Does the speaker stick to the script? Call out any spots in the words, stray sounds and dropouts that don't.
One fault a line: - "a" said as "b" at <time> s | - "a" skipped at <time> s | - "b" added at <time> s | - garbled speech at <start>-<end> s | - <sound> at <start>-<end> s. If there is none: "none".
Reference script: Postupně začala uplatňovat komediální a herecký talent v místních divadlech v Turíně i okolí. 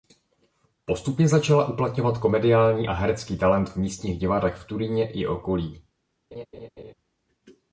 - laugh at 6.3-6.9 s